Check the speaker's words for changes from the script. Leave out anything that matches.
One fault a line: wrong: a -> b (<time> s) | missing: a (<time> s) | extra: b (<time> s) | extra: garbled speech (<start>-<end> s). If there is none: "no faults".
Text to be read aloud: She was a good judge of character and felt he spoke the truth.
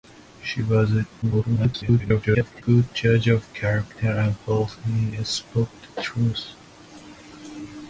extra: garbled speech (1.2-2.6 s)